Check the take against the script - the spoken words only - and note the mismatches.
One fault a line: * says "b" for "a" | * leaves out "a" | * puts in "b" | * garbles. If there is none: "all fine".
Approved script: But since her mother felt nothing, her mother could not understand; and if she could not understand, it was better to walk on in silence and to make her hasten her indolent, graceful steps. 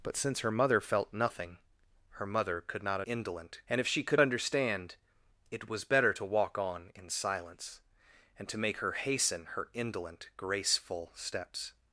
* says "indolent" for "understand"
* leaves out "not"